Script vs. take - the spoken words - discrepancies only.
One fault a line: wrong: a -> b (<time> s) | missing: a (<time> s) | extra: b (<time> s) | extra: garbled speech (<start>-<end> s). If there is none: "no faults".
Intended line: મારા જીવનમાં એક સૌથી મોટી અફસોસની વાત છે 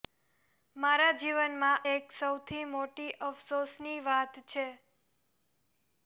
no faults